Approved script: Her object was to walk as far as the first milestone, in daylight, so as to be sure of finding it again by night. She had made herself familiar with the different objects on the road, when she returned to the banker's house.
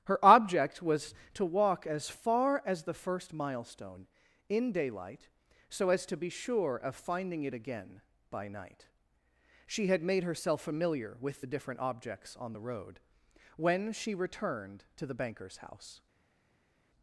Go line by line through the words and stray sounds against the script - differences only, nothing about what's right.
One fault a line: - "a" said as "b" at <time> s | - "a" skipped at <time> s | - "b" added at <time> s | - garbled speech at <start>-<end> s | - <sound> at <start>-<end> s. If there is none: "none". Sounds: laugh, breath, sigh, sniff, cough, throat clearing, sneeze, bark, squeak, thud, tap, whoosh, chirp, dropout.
none